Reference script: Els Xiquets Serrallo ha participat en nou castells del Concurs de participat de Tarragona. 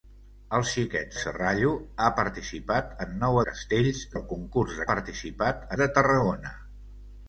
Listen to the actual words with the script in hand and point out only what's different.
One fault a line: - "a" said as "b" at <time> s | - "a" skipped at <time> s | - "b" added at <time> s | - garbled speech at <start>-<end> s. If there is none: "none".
none